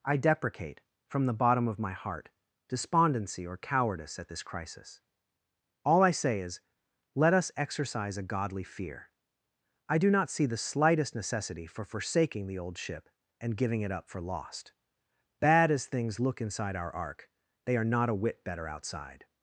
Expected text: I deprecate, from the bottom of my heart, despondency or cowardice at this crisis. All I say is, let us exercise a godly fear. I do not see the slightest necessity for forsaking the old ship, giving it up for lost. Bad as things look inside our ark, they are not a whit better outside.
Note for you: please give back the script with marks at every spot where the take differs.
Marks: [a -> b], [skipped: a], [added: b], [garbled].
I deprecate, from the bottom of my heart, despondency or cowardice at this crisis. All I say is, let us exercise a godly fear. I do not see the slightest necessity for forsaking the old ship, [added: and] giving it up for lost. Bad as things look inside our ark, they are not a whit better outside.